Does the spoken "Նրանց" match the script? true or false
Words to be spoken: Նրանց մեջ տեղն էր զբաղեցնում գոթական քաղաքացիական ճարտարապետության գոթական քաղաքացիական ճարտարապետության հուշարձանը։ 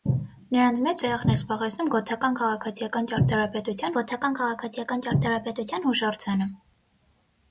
true